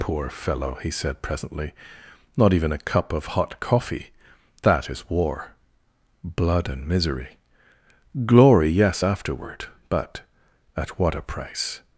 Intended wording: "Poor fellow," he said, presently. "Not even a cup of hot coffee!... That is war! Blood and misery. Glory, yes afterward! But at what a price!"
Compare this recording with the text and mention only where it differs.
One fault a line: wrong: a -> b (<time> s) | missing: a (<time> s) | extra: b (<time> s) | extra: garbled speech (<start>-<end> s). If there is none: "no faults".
no faults